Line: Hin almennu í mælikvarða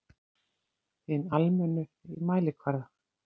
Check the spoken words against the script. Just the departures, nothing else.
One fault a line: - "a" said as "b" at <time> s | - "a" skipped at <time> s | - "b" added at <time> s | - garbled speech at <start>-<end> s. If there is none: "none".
none